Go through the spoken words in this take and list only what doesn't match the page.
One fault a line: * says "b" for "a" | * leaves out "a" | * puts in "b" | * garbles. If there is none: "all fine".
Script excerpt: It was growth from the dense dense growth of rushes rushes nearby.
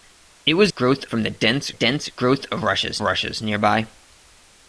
all fine